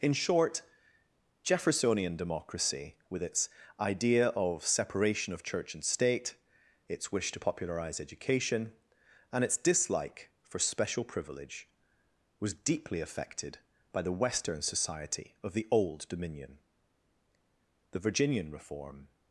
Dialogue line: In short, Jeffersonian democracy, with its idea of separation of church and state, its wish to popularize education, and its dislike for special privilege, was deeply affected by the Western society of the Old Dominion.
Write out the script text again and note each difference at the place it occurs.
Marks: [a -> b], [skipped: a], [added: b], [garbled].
In short, Jeffersonian democracy, with its idea of separation of church and state, its wish to popularize education, and its dislike for special privilege, was deeply affected by the Western society of the Old Dominion. [added: The Virginian reform]